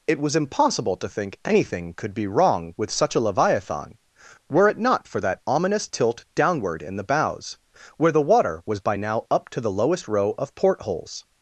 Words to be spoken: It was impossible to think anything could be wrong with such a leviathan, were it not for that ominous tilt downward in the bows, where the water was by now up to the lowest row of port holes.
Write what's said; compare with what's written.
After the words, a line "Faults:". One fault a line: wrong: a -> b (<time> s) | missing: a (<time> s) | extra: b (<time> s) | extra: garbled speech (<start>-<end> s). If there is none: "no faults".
It was impossible to think anything could be wrong with such a leviathan, were it not for that ominous tilt downward in the bows, where the water was by now up to the lowest row of port holes.
Faults:
no faults